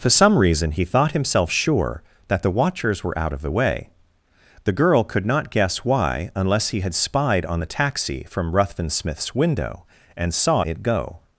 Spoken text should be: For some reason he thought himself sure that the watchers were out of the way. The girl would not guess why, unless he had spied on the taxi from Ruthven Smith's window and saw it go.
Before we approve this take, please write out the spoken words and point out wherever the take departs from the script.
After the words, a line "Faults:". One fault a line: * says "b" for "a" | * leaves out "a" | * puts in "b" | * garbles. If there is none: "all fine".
For some reason he thought himself sure that the watchers were out of the way. The girl could not guess why, unless he had spied on the taxi from Ruthven Smith's window and saw it go.
Faults:
* says "could" for "would"